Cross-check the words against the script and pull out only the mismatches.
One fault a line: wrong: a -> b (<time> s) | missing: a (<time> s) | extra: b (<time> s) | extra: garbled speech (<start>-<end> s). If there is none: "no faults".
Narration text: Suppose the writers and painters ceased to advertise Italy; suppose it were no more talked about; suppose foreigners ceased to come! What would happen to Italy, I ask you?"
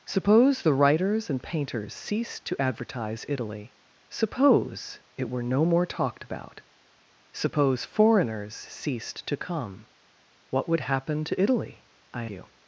missing: ask (12.2 s)